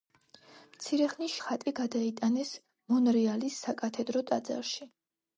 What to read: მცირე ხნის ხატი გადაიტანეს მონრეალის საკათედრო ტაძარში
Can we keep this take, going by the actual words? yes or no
yes